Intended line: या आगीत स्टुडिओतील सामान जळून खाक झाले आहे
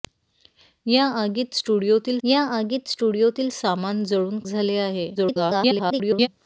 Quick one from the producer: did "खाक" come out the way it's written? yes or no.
no